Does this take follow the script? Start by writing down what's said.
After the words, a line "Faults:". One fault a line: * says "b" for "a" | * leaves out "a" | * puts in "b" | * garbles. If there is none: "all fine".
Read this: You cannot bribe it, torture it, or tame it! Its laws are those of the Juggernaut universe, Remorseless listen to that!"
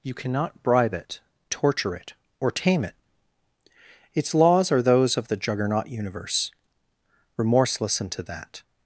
You cannot bribe it, torture it, or tame it! Its laws are those of the Juggernaut universe, Remorseless unto that!"
Faults:
* says "unto" for "listen to"